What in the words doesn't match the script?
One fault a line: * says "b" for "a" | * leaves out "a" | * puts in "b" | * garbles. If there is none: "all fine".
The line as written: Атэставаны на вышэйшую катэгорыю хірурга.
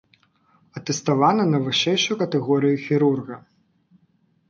all fine